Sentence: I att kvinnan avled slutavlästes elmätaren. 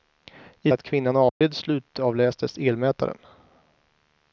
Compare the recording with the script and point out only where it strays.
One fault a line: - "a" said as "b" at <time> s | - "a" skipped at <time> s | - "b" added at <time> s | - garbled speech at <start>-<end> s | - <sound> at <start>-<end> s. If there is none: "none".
- dropout at 1.3-1.4 s